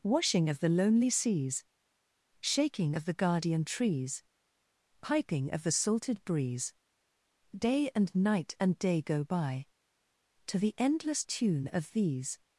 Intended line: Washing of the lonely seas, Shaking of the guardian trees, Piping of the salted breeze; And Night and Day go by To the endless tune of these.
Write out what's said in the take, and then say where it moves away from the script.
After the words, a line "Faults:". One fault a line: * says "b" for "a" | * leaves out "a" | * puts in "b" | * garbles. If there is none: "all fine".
Washing of the lonely seas, Shaking of the guardian trees, Piping of the salted breeze; Day and Night and Day go by To the endless tune of these.
Faults:
* puts in "Day"